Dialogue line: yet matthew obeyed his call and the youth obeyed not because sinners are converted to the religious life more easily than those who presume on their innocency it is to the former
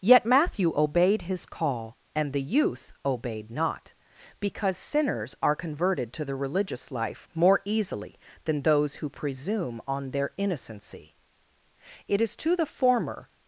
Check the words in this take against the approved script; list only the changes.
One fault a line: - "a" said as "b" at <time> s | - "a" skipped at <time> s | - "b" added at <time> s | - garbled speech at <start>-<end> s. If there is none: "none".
none